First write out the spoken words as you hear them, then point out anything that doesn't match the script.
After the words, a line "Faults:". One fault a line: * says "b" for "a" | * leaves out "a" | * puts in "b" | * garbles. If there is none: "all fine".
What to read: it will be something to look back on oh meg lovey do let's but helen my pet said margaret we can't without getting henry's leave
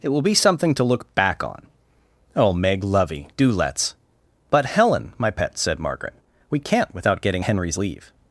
it will be something to look back on oh meg lovey do let's but helen my pet said margaret we can't without getting henry's leave
Faults:
all fine